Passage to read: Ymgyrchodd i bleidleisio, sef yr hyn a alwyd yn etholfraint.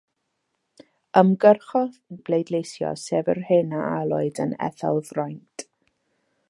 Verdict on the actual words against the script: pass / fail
pass